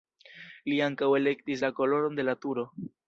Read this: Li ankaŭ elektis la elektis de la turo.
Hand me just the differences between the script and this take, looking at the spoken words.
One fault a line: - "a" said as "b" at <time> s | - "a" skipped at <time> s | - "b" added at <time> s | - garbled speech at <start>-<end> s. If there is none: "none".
- "elektis" said as "koloron" at 1.8 s